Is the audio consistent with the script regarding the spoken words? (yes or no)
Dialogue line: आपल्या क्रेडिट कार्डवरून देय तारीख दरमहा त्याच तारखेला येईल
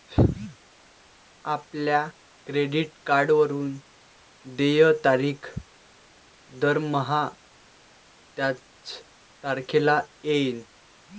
yes